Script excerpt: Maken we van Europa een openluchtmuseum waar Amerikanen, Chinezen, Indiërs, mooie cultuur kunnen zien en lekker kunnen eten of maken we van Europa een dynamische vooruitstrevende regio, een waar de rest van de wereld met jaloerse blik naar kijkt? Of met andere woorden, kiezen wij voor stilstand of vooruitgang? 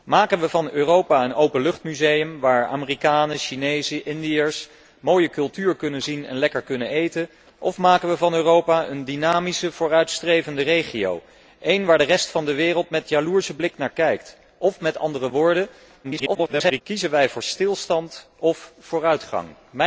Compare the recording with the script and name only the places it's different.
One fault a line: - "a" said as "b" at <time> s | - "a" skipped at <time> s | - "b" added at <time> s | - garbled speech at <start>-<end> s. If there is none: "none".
- garbled speech at 16.0-16.8 s